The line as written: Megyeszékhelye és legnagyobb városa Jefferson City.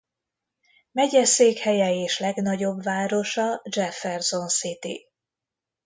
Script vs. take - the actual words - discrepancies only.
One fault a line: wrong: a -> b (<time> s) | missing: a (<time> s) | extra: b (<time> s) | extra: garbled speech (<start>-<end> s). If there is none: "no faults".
no faults